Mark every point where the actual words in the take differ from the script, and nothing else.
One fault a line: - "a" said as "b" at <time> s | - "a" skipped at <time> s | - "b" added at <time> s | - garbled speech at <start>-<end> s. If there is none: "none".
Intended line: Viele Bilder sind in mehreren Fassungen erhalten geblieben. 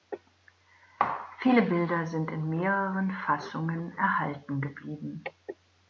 none